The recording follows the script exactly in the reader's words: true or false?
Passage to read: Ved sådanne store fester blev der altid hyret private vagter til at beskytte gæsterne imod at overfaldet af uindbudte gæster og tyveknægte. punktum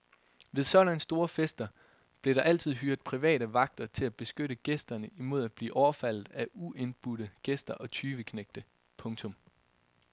false